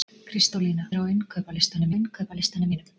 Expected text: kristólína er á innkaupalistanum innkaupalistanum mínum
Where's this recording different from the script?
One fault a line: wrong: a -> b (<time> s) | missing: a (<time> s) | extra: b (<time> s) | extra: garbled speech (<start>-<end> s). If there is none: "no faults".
no faults